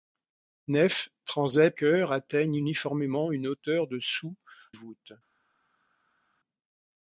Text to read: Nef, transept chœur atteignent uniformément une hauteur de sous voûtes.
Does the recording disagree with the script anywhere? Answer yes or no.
no